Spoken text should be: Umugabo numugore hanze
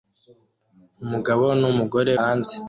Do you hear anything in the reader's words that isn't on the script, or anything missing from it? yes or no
no